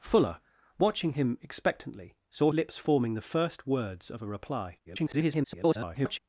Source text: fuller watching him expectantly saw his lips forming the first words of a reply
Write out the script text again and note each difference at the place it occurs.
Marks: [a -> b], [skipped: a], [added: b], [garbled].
fuller watching him expectantly saw [skipped: his] lips forming the first words of a reply [garbled]